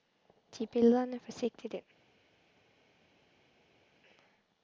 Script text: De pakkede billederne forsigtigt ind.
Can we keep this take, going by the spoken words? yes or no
no